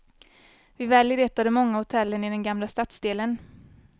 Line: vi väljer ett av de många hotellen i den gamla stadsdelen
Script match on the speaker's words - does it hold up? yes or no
yes